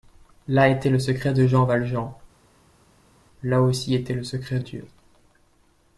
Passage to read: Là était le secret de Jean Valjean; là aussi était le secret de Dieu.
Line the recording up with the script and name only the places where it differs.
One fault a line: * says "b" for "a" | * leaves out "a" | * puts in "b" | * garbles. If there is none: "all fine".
* leaves out "de"